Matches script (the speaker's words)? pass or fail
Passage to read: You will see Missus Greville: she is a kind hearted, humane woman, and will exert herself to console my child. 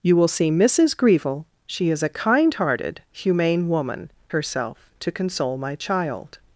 fail